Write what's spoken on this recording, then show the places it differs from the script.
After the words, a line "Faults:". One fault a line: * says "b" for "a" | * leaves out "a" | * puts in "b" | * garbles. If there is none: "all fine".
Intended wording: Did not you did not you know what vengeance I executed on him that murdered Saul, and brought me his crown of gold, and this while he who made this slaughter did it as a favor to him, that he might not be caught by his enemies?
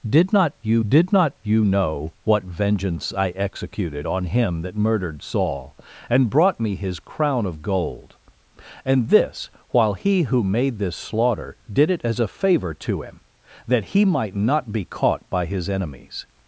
Did not you did not you know what vengeance I executed on him that murdered Saul, and brought me his crown of gold, and this while he who made this slaughter did it as a favor to him, that he might not be caught by his enemies?
Faults:
all fine